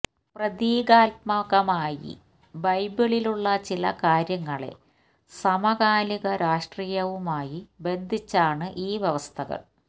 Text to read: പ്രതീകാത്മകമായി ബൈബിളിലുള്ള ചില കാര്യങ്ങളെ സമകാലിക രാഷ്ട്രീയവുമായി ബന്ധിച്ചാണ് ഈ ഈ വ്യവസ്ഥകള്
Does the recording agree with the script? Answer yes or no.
no